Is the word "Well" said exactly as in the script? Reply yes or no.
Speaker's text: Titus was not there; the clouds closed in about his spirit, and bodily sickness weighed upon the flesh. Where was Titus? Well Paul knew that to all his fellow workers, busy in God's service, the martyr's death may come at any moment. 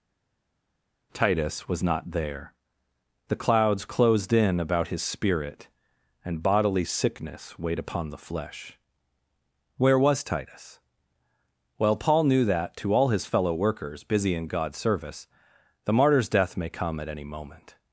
yes